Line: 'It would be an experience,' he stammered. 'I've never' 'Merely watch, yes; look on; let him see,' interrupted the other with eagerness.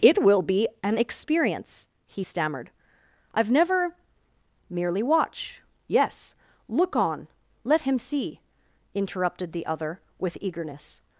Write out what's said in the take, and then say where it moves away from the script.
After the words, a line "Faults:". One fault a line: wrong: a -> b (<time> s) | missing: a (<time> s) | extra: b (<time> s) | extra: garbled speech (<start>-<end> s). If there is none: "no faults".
'It will be an experience,' he stammered. 'I've never' 'Merely watch, yes; look on; let him see,' interrupted the other with eagerness.
Faults:
wrong: would -> will (0.2 s)